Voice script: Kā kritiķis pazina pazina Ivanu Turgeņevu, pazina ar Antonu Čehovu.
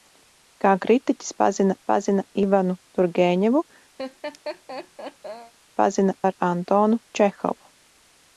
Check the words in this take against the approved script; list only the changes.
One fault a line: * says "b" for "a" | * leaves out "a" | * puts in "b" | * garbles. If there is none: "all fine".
all fine